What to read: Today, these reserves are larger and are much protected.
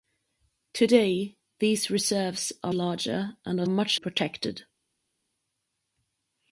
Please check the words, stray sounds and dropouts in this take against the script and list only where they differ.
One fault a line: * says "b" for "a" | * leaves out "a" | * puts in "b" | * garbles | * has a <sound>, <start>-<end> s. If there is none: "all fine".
all fine